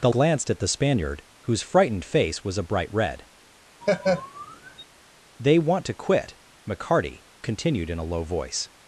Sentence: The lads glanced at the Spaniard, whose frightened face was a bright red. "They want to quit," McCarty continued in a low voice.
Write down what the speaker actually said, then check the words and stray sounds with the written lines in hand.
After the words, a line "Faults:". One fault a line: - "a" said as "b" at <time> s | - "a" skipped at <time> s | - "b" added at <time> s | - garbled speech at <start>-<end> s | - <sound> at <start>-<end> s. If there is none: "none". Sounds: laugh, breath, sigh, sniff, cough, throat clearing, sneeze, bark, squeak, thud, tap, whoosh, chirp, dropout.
The glanced at the Spaniard, whose frightened face was a bright red. "They want to quit," McCarty continued in a low voice.
Faults:
- "lads" skipped at 0.1 s
- laugh at 3.8-4.8 s